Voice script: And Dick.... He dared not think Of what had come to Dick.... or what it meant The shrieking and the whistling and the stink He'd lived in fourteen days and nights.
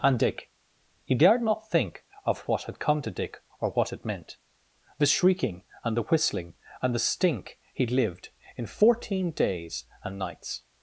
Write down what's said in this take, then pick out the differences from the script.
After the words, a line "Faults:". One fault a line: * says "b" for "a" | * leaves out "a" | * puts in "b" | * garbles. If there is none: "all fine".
And Dick.... He dared not think Of what had come to Dick.... or what it meant The shrieking and the whistling and the stink He'd lived in fourteen days and nights.
Faults:
all fine